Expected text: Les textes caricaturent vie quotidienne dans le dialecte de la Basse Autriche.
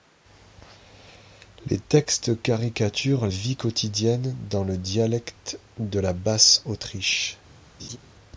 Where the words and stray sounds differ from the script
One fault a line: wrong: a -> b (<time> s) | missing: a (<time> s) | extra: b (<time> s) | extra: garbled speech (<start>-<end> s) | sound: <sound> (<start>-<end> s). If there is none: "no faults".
sound: laugh (7.8-8.0 s)